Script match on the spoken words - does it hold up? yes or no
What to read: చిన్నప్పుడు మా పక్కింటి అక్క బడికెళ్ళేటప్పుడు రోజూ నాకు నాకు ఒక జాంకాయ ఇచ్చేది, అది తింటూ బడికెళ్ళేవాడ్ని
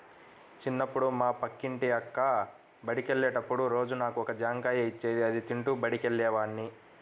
no